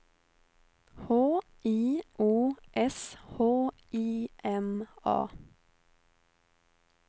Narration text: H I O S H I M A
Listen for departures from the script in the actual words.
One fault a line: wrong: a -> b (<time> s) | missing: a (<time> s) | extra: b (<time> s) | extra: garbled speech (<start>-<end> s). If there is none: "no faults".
no faults